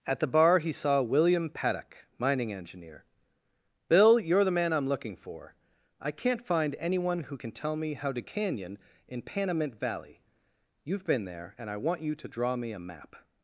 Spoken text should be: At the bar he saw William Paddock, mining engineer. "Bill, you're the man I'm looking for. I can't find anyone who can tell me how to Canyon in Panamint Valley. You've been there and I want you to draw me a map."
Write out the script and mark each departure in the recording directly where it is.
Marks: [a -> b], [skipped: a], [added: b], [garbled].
At the bar he saw William Paddock, mining engineer. "Bill, you're the man I'm looking for. I can't find anyone who can tell me how to Canyon in Panamint Valley. You've been there and I want you to draw me a map."